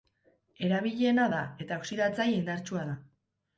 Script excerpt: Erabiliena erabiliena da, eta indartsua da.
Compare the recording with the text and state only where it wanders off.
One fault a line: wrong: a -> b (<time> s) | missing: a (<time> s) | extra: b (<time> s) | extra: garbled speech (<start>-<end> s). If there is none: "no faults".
missing: erabiliena (1.3 s)
extra: oxidatzaile (1.8 s)